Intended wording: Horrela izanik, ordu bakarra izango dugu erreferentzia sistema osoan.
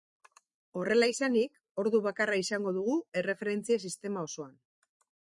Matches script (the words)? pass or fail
pass